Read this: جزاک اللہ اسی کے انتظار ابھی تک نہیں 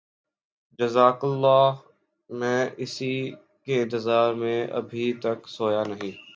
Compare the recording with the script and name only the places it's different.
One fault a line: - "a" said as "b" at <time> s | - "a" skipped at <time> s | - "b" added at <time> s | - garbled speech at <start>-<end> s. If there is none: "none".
- "میں" added at 2.3 s
- "میں" added at 4.3 s
- "سویا" added at 5.5 s